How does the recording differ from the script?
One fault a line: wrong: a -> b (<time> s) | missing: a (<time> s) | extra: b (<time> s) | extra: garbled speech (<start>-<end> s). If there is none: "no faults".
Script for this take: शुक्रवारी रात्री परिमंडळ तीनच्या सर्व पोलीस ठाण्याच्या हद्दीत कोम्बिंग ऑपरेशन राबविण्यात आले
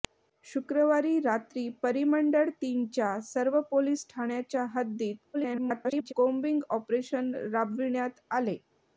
extra: garbled speech (5.3-6.1 s)